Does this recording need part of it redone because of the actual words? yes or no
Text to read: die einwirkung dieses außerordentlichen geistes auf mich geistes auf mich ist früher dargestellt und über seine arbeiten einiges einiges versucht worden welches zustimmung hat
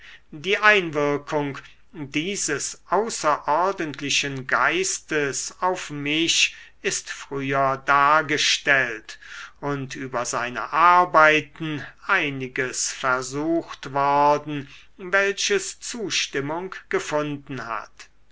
yes